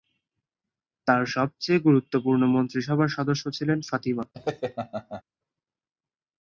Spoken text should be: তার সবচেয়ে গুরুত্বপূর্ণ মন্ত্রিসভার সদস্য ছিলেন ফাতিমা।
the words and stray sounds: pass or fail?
fail